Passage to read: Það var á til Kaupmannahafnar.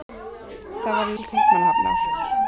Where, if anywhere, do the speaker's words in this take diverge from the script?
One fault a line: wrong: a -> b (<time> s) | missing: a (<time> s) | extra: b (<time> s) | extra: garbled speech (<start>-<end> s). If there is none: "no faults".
no faults